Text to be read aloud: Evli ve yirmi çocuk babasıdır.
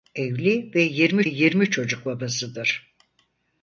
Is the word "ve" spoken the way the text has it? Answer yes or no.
yes